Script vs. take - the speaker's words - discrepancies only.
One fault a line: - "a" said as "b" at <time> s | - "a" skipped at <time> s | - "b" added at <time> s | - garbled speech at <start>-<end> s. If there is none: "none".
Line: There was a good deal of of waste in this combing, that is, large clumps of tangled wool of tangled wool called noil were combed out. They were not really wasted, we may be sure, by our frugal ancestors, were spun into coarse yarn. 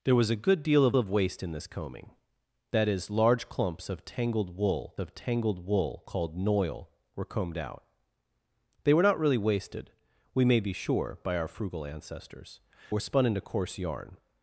none